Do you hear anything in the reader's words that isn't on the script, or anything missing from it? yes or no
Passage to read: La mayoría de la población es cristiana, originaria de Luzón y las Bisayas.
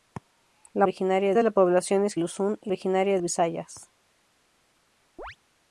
yes